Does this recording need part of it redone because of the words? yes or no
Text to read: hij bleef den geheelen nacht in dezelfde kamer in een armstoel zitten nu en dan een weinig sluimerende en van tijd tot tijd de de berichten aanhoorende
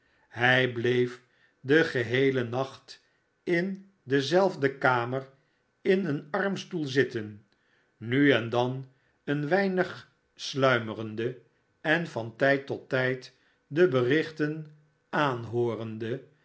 yes